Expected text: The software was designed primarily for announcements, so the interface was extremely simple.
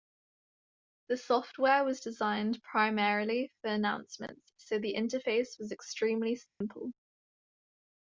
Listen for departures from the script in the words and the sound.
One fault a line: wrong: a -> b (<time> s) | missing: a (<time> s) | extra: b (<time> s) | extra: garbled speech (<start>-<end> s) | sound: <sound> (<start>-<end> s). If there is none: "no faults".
sound: dropout (6.5-6.6 s)